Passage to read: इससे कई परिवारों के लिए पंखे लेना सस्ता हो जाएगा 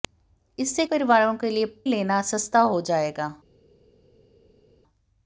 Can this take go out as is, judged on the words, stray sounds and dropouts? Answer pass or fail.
fail